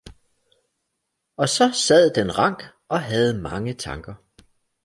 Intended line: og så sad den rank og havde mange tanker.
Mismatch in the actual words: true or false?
false